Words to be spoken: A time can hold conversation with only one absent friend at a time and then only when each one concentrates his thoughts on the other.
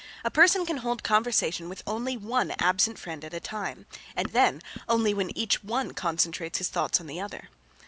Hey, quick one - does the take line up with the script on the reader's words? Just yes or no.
no